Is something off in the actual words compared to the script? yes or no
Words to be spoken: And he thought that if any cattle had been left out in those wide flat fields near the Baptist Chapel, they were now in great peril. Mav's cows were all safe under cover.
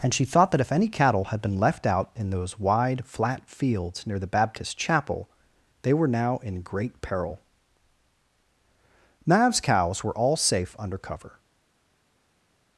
yes